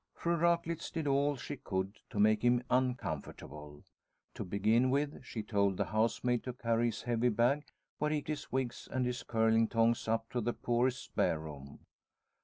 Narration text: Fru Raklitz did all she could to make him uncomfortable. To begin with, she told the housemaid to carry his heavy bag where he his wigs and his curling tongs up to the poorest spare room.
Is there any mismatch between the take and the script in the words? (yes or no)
no